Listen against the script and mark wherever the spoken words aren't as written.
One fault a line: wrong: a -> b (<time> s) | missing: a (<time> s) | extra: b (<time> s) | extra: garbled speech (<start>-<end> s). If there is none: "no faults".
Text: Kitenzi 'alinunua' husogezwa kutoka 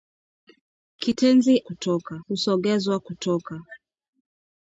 wrong: alinunua -> kutoka (1.6 s)